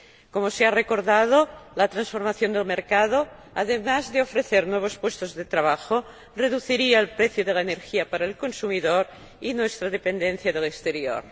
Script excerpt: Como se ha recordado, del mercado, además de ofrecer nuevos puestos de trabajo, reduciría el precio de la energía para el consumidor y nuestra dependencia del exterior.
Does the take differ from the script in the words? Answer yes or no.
yes